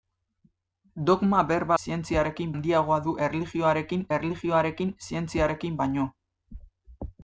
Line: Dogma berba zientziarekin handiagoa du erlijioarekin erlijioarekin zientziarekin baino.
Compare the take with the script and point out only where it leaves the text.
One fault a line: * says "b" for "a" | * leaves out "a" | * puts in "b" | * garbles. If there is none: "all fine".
all fine